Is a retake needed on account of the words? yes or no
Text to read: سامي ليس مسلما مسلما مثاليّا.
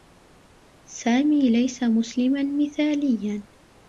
yes